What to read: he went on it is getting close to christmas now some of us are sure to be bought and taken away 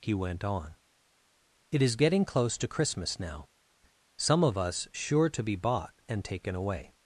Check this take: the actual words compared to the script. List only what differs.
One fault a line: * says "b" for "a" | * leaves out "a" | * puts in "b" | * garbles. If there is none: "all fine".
* leaves out "are"